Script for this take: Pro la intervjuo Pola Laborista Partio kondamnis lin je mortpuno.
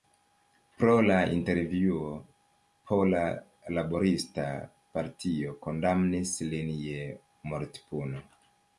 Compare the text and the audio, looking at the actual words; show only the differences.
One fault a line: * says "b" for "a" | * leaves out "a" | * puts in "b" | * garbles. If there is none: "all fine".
all fine